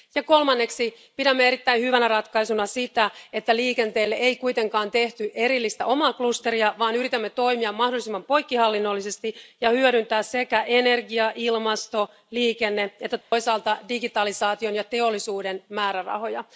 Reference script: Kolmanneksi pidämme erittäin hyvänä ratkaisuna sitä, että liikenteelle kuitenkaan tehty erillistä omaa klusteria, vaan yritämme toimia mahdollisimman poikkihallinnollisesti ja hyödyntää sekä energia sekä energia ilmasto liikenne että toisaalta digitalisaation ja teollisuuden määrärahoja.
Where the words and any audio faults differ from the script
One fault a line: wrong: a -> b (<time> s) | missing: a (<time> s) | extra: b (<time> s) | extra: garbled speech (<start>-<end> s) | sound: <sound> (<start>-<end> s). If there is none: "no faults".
extra: ei (4.2 s)
missing: sekä energia (11.3 s)
sound: dropout (13.2-13.3 s)